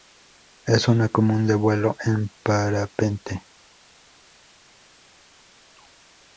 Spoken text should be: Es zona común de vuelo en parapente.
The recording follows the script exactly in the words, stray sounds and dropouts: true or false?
true